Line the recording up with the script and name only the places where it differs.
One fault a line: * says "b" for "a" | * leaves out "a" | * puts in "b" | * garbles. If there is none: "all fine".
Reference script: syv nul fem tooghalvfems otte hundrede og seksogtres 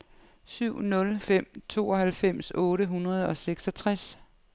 all fine